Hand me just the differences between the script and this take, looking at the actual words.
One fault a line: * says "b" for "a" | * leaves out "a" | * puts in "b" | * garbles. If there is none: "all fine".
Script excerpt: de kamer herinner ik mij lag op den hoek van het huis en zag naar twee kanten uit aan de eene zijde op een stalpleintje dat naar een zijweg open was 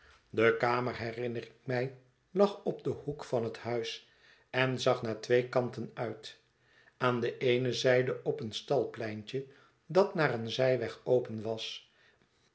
all fine